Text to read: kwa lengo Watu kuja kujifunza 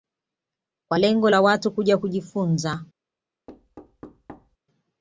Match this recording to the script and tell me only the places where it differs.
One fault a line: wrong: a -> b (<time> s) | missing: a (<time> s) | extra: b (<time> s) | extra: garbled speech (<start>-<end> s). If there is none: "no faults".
extra: la (1.3 s)